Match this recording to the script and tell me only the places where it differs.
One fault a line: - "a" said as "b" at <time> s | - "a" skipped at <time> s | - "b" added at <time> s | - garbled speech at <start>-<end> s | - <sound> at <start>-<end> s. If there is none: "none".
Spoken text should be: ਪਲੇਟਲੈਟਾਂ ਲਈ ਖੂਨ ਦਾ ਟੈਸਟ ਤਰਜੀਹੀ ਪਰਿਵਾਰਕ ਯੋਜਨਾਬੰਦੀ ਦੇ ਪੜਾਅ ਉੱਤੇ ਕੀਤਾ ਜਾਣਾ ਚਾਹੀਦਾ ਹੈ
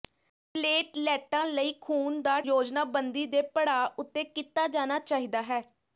- "ਟੈਸਟ ਤਰਜੀਹੀ ਪਰਿਵਾਰਕ" skipped at 2.4 s